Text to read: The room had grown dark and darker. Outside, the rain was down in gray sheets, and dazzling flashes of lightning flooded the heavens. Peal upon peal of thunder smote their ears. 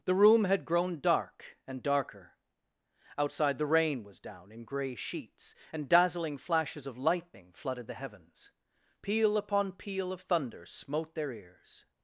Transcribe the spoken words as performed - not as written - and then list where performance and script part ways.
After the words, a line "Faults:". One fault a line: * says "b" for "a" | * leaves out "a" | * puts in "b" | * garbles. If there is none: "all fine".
The room had grown dark and darker. Outside, the rain was down in gray sheets, and dazzling flashes of lightning flooded the heavens. Peal upon peal of thunder smote their ears.
Faults:
all fine